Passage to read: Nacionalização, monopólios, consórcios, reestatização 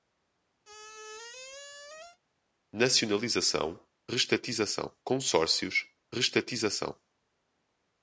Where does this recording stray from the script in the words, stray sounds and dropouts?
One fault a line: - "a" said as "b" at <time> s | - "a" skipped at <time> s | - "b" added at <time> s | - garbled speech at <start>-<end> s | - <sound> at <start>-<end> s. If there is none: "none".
- squeak at 0.6-2.2 s
- "monopólios" said as "reestatização" at 4.1 s